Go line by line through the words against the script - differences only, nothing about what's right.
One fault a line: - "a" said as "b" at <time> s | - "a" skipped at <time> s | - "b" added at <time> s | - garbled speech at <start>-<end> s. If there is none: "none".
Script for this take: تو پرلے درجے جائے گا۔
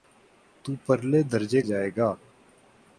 none